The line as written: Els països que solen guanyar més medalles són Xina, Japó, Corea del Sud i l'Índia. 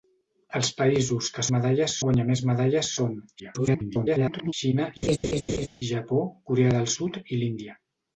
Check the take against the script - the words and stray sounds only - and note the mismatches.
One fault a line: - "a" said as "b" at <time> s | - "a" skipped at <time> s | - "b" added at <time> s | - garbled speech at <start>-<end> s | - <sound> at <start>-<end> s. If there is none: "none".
- "solen" said as "medalles" at 1.6 s
- garbled speech at 3.4-4.5 s
- laugh at 5.0-5.7 s